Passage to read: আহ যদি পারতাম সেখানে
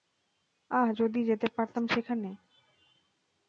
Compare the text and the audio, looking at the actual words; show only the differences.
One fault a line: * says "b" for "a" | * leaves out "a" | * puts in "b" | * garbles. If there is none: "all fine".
* puts in "যেতে"